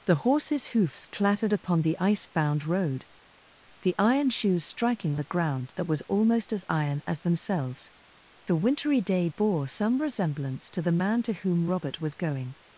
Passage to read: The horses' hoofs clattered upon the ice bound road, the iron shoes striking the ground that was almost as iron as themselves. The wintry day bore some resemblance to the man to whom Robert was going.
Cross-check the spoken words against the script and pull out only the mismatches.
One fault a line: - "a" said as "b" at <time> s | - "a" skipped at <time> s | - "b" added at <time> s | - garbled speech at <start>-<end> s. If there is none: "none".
none